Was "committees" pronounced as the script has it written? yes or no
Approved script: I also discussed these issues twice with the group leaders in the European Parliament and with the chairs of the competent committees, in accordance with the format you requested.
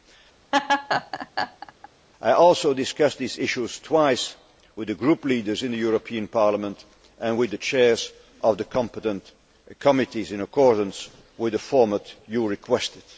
yes